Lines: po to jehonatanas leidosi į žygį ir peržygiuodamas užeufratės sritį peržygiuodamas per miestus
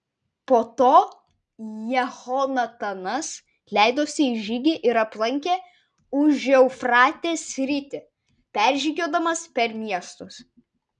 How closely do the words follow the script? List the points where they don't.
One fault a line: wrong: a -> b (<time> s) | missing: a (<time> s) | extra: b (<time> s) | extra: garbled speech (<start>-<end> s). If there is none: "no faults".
wrong: peržygiuodamas -> aplankė (5.0 s)